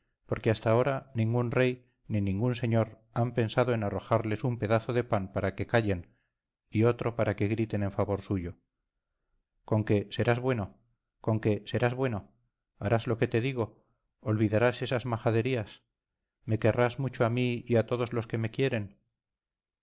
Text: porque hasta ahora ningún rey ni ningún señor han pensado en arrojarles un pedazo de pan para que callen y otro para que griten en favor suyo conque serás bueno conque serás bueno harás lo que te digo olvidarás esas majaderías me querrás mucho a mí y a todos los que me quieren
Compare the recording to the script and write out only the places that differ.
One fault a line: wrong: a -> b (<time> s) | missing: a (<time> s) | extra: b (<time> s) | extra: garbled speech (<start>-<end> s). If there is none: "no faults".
no faults